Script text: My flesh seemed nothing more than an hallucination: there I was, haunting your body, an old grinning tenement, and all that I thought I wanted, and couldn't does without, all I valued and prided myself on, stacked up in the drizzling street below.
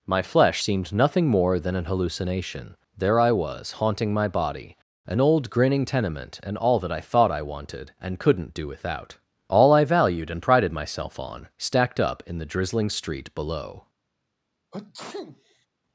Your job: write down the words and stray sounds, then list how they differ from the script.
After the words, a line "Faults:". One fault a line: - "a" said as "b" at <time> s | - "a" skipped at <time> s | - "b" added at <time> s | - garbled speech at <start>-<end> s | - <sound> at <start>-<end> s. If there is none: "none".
My flesh seemed nothing more than an hallucination: there I was, haunting my body, an old grinning tenement, and all that I thought I wanted, and couldn't do without, all I valued and prided myself on, stacked up in the drizzling street below.
Faults:
- "your" said as "my" at 4.1 s
- "does" said as "do" at 8.5 s
- sneeze at 14.7-15.7 s